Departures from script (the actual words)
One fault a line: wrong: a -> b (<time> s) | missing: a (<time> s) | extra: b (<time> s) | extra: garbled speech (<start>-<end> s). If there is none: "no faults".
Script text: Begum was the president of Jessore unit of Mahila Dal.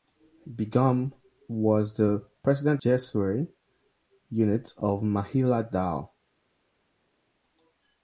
missing: of (2.8 s)